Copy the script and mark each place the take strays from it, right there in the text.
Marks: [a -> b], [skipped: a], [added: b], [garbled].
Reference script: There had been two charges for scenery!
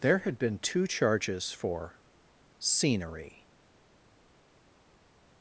There had been two charges for scenery!